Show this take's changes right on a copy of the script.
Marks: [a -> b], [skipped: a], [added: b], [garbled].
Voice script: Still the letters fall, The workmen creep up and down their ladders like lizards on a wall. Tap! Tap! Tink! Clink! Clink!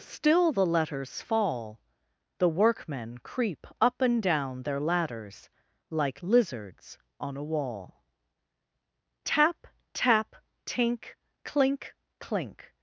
Still the letters fall, The workmen creep up and down their ladders like lizards on a wall. Tap! Tap! Tink! Clink! Clink!